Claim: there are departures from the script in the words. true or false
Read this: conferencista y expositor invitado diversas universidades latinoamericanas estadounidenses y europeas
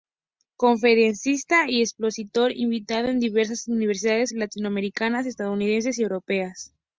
true